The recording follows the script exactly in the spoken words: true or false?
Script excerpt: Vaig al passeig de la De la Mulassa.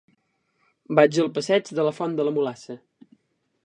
false